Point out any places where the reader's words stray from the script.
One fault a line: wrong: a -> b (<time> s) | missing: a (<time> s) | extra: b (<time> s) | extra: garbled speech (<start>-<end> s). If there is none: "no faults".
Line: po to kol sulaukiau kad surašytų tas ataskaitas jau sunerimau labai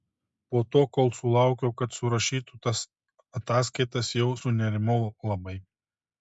no faults